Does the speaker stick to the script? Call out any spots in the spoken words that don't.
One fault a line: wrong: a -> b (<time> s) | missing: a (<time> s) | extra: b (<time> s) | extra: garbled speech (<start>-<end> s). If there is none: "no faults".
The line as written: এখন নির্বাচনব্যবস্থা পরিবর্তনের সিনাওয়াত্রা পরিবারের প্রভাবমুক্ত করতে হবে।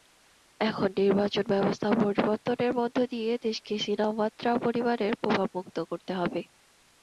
extra: মধ্য দিয়ে দেশকে (2.8 s)